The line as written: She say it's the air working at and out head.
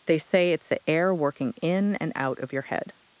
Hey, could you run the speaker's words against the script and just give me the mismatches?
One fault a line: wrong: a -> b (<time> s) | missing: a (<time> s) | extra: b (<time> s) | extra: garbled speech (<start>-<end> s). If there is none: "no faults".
wrong: She -> They (0.1 s)
wrong: at -> in (1.6 s)
extra: of your (2.4 s)